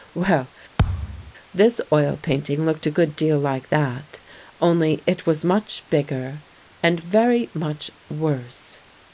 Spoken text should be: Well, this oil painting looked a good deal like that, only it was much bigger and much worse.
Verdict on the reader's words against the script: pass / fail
fail